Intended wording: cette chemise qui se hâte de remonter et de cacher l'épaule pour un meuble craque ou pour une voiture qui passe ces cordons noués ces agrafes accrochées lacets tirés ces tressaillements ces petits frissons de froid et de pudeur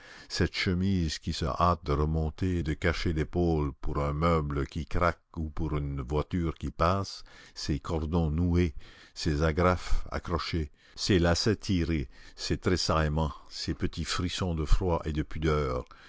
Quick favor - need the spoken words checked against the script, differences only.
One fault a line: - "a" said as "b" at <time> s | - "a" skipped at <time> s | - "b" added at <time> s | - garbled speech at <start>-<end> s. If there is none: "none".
- "qui" added at 4.7 s
- "ces" added at 10.9 s